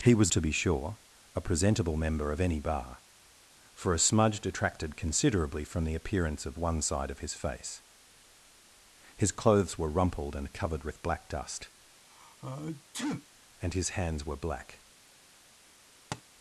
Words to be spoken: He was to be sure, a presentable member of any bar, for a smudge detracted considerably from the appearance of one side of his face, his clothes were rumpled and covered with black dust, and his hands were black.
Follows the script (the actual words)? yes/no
yes